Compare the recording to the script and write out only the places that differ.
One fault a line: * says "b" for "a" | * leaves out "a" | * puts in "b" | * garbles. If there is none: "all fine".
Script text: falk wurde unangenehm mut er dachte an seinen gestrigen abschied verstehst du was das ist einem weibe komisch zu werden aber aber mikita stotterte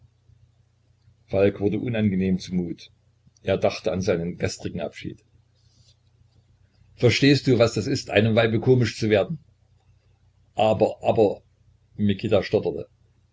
* puts in "zu"